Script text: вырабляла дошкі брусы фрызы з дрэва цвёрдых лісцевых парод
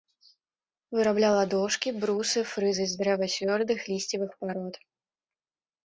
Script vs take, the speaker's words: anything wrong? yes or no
no